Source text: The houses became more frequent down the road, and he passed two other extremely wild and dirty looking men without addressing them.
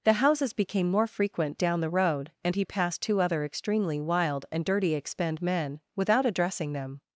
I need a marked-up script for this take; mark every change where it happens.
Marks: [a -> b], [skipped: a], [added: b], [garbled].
The houses became more frequent down the road, and he passed two other extremely wild and dirty [looking -> expend] men without addressing them.